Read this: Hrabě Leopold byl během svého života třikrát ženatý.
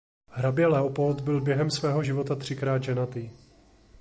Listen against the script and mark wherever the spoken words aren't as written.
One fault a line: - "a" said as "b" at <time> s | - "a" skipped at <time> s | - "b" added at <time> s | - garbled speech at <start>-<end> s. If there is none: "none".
none